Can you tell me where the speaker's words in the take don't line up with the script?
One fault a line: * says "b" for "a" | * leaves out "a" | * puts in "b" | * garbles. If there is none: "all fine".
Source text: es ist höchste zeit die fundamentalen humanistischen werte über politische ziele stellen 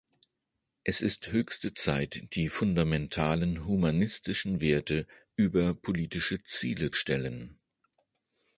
all fine